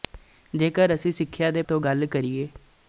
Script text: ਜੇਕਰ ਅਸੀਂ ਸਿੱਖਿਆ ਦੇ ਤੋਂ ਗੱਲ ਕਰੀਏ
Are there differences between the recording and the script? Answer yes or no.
no